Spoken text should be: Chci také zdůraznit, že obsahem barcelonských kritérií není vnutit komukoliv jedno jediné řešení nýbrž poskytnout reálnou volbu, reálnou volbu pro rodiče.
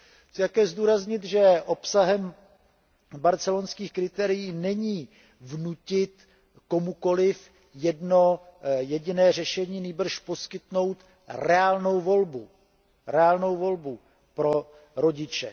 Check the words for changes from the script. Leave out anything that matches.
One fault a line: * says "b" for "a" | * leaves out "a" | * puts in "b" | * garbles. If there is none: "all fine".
all fine